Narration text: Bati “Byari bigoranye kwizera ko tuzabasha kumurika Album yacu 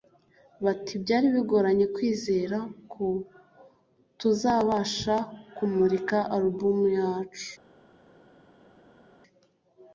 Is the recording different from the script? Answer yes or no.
no